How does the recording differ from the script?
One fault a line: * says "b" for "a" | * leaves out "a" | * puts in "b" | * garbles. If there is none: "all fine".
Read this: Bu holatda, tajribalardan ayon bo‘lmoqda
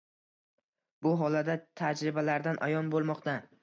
all fine